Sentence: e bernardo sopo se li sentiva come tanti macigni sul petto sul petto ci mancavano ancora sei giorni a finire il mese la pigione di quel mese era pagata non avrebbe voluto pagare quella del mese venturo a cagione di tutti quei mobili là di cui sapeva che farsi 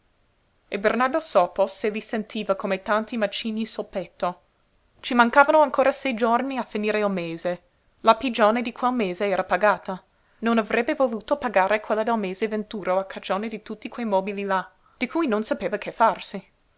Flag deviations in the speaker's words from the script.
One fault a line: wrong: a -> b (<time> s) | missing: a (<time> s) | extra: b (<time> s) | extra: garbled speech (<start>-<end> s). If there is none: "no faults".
missing: sul petto (4.4 s)
extra: non (15.3 s)